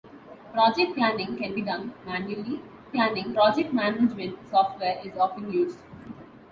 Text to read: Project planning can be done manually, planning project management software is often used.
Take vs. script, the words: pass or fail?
pass